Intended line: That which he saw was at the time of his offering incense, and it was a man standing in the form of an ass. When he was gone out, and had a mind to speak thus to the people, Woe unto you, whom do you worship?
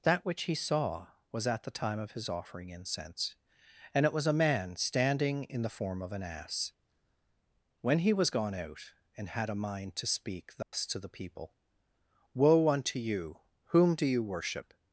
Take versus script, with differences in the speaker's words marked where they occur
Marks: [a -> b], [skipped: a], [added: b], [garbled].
That which he saw was at the time of his offering incense, and it was a man standing in the form of an ass. When he was gone out, and had a mind to speak thus to the people, Woe unto you, whom do you worship?